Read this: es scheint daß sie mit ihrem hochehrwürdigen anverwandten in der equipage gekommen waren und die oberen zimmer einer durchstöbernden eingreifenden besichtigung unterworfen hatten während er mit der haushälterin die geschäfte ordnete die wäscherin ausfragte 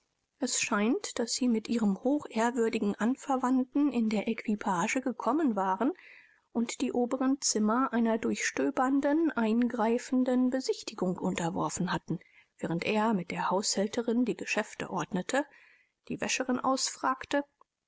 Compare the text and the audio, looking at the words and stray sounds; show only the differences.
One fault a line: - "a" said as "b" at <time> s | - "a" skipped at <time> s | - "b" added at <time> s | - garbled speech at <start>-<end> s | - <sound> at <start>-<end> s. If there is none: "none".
none